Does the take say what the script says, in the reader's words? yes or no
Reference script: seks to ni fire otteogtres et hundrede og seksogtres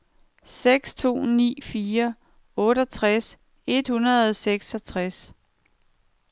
yes